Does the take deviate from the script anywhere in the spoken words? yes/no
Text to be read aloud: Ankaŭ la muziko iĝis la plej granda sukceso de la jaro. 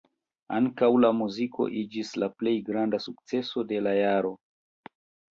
no